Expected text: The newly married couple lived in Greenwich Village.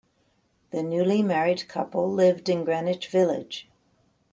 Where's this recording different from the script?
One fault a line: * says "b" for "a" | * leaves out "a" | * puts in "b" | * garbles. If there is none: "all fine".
all fine